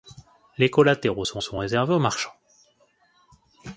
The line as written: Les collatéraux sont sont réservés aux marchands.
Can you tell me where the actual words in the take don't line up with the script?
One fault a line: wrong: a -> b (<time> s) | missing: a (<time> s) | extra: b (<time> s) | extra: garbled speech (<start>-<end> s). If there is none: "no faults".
no faults